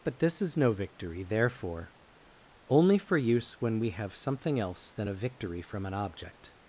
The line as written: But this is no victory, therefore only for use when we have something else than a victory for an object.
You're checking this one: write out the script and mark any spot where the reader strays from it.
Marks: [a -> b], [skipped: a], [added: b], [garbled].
But this is no victory, therefore only for use when we have something else than a victory [for -> from] an object.